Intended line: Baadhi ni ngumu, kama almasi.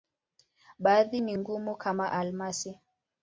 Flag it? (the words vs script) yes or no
no